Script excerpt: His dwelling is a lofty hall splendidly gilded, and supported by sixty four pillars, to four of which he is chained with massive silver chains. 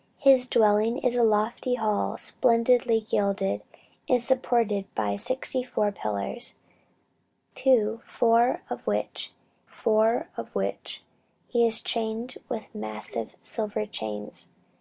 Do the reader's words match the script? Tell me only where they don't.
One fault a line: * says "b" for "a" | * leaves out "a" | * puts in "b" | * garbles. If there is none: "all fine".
* puts in "four of which"